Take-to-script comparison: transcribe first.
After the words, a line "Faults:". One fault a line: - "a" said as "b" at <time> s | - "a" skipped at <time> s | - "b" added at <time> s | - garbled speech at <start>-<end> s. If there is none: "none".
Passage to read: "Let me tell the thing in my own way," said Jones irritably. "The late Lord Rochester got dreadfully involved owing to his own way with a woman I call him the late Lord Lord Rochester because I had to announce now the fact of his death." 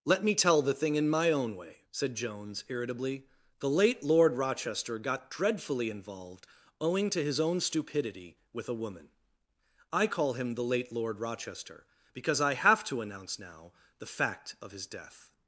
"Let me tell the thing in my own way," said Jones irritably. "The late Lord Rochester got dreadfully involved owing to his own stupidity with a woman I call him the late Lord Rochester because I have to announce now the fact of his death."
Faults:
- "way" said as "stupidity" at 7.6 s
- "Lord" skipped at 11.2 s
- "had" said as "have" at 12.5 s